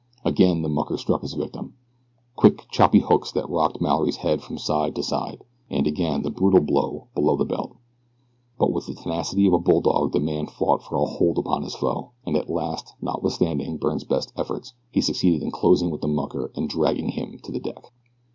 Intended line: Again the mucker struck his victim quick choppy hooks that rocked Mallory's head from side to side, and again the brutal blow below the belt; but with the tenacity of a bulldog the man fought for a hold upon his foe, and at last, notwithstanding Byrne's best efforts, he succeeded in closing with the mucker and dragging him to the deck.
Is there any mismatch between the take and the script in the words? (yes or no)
no